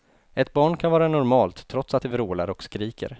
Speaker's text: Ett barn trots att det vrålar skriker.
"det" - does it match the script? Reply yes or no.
yes